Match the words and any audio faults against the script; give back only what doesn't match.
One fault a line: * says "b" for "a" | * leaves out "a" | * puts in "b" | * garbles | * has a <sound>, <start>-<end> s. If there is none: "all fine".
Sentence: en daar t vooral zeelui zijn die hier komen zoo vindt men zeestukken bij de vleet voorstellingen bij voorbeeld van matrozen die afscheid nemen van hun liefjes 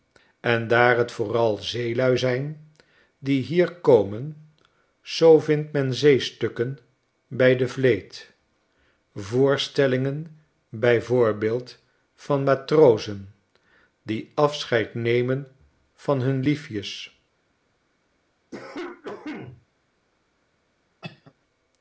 * has a cough, 18.5-19.7 s
* has a cough, 21.0-21.3 s